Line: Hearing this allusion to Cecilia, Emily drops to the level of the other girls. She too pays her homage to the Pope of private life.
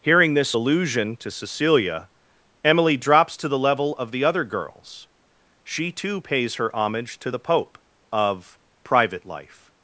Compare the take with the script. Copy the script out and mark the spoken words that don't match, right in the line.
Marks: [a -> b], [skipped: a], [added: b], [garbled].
Hearing this allusion to Cecilia, Emily drops to the level of the other girls. She too pays her homage to the Pope of private life.